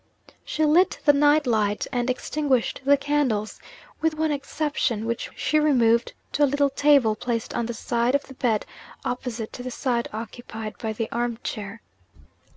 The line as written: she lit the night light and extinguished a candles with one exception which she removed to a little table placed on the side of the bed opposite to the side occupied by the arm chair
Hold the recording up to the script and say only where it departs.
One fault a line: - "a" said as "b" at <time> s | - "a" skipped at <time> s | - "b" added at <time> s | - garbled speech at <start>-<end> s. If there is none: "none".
- "a" said as "the" at 2.9 s